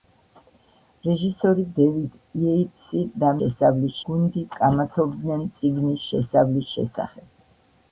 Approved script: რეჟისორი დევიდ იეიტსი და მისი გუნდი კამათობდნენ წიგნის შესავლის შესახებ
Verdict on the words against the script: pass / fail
fail